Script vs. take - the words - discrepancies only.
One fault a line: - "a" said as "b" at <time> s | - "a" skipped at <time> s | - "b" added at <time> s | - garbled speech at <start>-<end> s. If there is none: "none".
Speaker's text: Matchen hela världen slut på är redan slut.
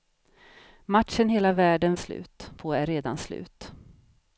none